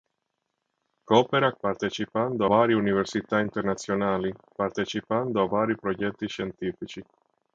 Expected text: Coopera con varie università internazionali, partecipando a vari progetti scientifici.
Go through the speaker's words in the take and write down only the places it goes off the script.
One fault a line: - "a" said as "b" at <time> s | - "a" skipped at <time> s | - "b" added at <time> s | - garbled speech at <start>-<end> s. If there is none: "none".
- "con" said as "partecipando" at 1.6 s